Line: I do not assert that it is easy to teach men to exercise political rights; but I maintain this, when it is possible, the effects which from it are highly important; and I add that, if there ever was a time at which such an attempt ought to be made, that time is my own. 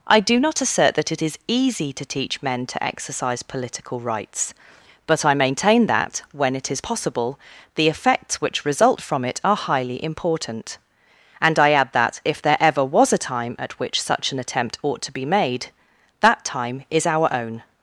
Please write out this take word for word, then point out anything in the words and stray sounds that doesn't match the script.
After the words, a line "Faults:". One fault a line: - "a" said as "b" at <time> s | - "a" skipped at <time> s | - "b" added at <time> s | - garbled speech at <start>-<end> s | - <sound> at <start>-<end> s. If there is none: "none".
I do not assert that it is easy to teach men to exercise political rights; but I maintain that, when it is possible, the effects which result from it are highly important; and I add that, if there ever was a time at which such an attempt ought to be made, that time is our own.
Faults:
- "this" said as "that" at 5.8 s
- "result" added at 8.6 s
- "my" said as "our" at 17.0 s